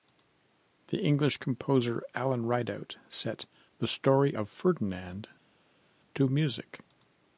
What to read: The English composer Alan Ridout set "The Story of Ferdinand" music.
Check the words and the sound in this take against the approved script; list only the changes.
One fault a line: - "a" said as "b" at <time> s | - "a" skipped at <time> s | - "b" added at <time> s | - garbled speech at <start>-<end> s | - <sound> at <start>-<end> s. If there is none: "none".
- "to" added at 6.1 s